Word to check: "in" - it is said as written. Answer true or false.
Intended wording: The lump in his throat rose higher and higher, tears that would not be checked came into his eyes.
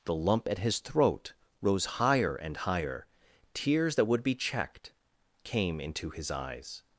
false